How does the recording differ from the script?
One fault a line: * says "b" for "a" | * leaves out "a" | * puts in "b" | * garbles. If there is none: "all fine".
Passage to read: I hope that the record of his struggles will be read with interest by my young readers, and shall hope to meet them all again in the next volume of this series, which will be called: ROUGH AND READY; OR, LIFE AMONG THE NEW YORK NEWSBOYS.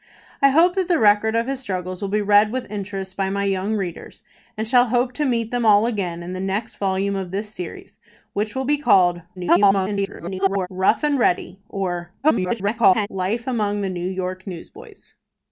* garbles
* garbles